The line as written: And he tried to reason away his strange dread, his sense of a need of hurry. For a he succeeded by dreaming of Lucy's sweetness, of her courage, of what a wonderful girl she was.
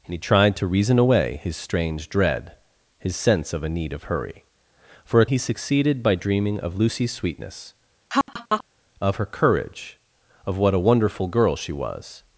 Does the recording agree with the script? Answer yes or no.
yes